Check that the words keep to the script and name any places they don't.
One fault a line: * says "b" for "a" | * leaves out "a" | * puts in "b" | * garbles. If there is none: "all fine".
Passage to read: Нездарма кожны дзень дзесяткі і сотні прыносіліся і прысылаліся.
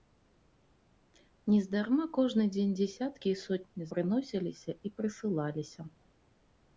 all fine